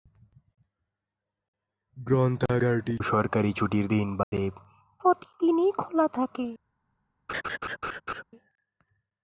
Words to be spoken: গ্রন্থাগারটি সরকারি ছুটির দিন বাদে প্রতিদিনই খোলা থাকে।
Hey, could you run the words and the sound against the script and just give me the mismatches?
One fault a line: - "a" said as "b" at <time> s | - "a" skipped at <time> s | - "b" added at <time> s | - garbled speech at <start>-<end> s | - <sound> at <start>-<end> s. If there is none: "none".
- dropout at 4.2-4.3 s
- laugh at 7.3-8.2 s